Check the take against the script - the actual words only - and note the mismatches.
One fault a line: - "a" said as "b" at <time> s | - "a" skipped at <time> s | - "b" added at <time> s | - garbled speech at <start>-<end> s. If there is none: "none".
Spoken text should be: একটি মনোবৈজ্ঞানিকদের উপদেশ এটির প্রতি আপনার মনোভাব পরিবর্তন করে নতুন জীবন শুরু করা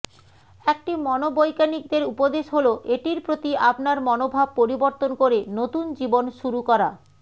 - "হল" added at 2.5 s